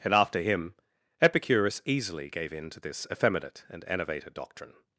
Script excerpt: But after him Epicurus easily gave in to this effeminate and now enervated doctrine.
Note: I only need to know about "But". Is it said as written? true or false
false